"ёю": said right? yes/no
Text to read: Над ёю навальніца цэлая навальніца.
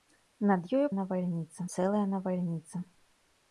yes